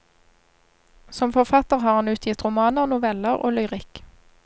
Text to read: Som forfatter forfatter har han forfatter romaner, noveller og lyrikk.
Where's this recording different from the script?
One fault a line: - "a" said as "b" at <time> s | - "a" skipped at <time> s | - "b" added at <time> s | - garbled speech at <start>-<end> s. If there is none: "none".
- "forfatter" skipped at 1.8 s
- "forfatter" said as "utgitt" at 2.1 s